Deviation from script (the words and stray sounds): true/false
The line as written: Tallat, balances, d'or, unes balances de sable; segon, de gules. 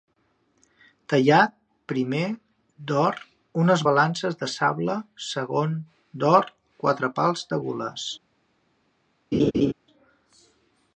true